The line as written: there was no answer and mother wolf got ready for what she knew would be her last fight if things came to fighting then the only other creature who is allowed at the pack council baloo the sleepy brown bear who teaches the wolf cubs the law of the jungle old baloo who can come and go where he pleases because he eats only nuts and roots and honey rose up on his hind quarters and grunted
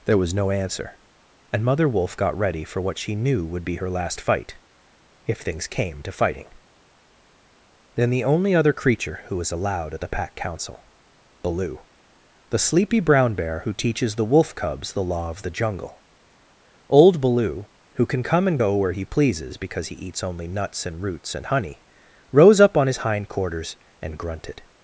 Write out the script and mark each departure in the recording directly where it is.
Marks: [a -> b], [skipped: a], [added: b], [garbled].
there was no answer and mother wolf got ready for what she knew would be her last fight if things came to fighting then the only other creature who [is -> was] allowed at the pack council baloo the sleepy brown bear who teaches the wolf cubs the law of the jungle old baloo who can come and go where he pleases because he eats only nuts and roots and honey rose up on his hind quarters and grunted